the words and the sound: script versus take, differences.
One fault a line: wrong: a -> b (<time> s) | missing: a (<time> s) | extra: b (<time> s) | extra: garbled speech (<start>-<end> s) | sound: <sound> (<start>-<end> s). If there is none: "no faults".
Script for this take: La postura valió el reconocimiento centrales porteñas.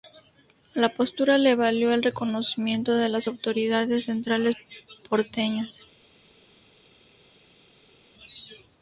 extra: le (1.4 s)
extra: de las autoridades (3.0 s)